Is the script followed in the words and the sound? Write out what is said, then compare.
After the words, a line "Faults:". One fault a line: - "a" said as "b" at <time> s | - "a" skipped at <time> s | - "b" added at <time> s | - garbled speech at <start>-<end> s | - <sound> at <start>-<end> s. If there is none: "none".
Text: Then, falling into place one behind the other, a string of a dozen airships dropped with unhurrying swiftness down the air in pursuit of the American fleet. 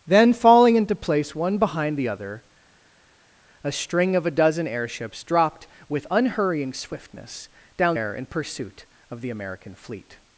Then, falling into place one behind the other, a string of a dozen airships dropped with unhurrying swiftness down air in pursuit of the American fleet.
Faults:
- "the" skipped at 8.0 s